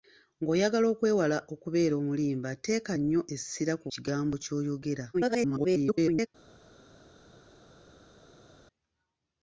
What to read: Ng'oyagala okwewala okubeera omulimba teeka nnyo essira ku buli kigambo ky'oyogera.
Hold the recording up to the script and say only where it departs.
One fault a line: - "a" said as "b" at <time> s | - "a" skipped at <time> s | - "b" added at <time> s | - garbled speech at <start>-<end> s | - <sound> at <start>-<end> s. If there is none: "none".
- "buli" skipped at 3.9 s
- garbled speech at 5.1-6.3 s